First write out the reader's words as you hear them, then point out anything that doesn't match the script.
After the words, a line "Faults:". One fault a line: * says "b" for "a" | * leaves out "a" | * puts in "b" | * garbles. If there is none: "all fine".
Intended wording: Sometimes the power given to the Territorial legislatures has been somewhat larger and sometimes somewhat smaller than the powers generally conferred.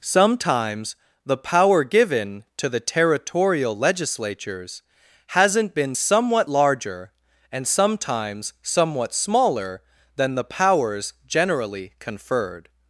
Sometimes the power given to the Territorial legislatures hasn't been somewhat larger and sometimes somewhat smaller than the powers generally conferred.
Faults:
* says "hasn't" for "has"